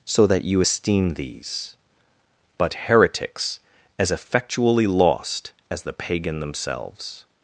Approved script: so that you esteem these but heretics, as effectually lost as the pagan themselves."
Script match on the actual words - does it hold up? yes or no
yes